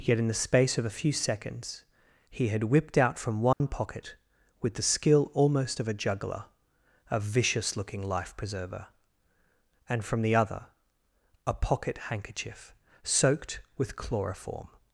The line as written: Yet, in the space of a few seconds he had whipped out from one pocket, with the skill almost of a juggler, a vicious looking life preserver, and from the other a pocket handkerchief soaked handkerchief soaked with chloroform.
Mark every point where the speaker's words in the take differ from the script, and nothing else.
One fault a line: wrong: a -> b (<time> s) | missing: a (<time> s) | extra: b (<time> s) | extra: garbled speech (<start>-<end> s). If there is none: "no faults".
missing: handkerchief soaked (13.6 s)